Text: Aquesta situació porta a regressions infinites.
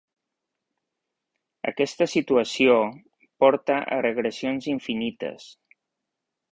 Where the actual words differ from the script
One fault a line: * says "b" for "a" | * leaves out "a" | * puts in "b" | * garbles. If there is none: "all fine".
all fine